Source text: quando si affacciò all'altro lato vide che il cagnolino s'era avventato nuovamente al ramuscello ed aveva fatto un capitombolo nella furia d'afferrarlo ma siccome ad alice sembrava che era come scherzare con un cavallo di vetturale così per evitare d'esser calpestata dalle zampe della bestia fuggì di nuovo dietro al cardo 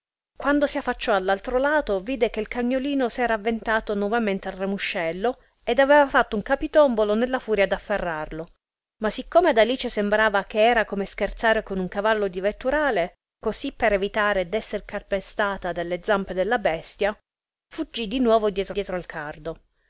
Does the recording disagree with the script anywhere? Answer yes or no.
yes